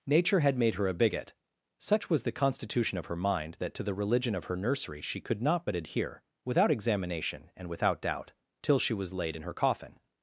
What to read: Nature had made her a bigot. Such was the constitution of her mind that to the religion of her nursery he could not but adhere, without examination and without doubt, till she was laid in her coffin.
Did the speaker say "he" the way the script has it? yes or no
no